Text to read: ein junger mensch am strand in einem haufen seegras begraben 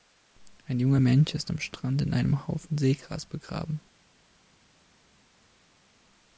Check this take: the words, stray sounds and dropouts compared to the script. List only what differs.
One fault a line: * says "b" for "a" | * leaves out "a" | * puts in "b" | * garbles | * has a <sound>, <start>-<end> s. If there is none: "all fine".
* puts in "ist"